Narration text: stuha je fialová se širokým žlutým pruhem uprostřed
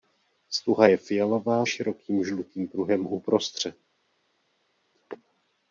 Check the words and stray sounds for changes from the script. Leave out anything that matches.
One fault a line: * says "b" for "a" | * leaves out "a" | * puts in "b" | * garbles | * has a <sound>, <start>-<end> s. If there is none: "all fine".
* leaves out "se"